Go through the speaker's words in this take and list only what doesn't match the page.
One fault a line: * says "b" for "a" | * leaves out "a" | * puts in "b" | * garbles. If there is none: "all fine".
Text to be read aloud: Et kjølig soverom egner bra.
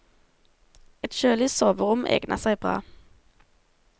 * puts in "seg"